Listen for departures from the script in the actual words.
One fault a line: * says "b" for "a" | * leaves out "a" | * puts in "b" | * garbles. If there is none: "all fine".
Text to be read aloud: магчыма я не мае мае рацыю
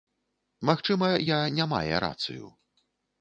* leaves out "мае"